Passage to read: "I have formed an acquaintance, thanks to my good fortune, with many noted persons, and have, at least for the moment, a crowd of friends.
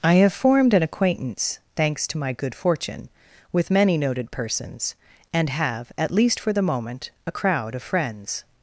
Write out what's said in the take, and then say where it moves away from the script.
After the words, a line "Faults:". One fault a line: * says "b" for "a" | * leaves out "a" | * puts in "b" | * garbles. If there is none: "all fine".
"I have formed an acquaintance, thanks to my good fortune, with many noted persons, and have, at least for the moment, a crowd of friends.
Faults:
all fine